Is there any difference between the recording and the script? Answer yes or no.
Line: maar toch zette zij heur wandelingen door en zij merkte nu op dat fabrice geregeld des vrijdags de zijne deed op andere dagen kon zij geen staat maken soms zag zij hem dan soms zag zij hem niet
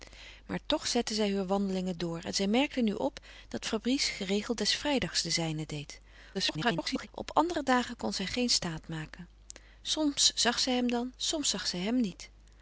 yes